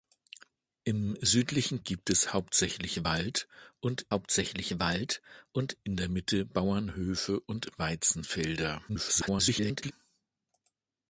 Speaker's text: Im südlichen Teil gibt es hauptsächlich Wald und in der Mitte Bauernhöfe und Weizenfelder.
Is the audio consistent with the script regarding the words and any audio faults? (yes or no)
no